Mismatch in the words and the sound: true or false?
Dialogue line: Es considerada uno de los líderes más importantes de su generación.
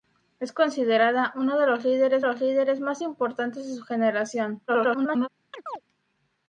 true